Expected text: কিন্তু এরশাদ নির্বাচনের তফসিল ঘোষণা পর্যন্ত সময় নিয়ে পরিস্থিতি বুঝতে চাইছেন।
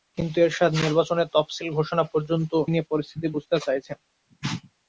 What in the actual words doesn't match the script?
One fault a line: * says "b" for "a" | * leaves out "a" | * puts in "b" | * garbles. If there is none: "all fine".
* leaves out "সময়"